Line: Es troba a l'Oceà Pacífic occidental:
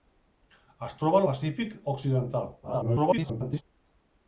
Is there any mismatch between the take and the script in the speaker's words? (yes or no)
yes